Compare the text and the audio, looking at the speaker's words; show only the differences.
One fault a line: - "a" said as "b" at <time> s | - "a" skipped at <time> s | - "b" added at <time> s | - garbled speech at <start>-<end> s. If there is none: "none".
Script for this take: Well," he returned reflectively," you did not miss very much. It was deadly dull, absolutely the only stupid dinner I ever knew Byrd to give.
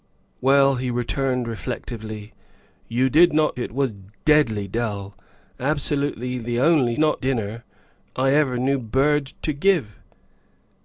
- "miss very much" skipped at 3.6 s
- "stupid" said as "not" at 7.0 s